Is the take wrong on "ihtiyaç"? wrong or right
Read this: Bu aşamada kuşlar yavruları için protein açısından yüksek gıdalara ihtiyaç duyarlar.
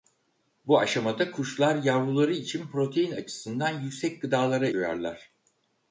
wrong